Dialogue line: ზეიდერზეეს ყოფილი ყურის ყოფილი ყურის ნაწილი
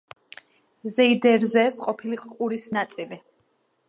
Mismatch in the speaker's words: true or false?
true